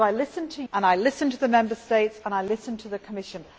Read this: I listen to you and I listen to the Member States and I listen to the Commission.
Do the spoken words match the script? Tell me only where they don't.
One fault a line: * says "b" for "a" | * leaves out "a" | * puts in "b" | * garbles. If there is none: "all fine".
* leaves out "you"